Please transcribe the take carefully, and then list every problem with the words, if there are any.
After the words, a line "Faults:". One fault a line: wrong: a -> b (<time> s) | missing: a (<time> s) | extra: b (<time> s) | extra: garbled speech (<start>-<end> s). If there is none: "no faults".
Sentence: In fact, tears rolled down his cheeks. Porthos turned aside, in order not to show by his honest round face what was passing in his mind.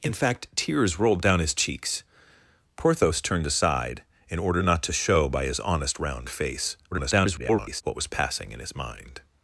In fact, tears rolled down his cheeks. Porthos turned aside, in order not to show by his honest round face [garbled] what was passing in his mind.
Faults:
extra: garbled speech (6.9-7.8 s)